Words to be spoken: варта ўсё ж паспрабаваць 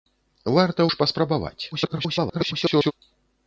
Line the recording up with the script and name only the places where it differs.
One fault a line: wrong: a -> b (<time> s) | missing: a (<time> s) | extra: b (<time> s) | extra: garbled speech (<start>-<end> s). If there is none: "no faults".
missing: ўсё (0.9 s)
extra: garbled speech (1.7-2.9 s)